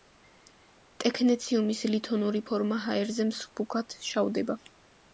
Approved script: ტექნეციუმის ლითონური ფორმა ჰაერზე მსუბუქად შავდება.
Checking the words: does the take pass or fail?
pass